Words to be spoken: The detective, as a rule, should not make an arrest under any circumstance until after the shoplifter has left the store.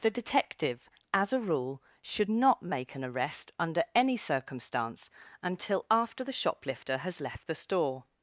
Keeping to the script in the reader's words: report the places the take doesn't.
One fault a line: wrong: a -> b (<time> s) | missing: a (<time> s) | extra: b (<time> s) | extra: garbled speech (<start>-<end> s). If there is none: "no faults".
no faults